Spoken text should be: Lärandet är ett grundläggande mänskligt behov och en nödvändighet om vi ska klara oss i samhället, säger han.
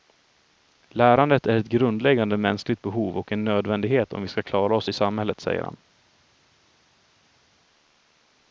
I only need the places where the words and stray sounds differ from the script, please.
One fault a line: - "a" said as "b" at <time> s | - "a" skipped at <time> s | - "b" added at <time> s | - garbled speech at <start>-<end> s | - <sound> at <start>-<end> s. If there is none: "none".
none